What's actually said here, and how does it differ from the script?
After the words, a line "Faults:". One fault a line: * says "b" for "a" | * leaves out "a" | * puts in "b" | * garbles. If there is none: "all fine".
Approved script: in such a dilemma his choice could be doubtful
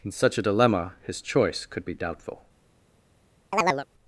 in such a dilemma his choice could be doubtful
Faults:
all fine